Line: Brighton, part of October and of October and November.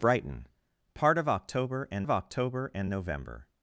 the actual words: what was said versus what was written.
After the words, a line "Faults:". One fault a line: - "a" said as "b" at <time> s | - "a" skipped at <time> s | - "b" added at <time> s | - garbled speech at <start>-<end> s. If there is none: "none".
Brighton, part of October and of October and November.
Faults:
none